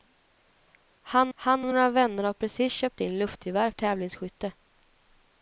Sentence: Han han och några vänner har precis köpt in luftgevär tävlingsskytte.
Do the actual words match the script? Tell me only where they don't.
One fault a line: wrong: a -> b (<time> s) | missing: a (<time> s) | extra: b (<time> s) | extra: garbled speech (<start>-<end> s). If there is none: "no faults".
no faults